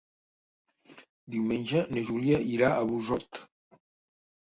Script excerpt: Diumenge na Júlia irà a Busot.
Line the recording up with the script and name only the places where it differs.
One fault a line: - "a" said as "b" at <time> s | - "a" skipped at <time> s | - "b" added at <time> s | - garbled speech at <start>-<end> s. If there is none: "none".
none